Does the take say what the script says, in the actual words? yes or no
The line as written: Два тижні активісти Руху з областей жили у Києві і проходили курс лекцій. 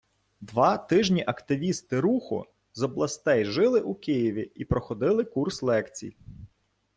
yes